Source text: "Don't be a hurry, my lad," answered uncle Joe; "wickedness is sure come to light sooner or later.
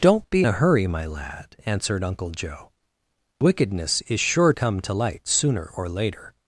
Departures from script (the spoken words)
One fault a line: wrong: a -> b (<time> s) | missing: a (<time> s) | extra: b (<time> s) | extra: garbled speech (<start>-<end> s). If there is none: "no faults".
no faults